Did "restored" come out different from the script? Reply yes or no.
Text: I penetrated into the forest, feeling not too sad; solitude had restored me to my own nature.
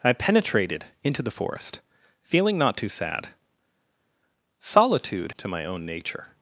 yes